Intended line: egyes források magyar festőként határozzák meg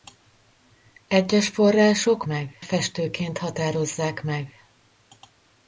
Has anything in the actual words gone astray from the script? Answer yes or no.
yes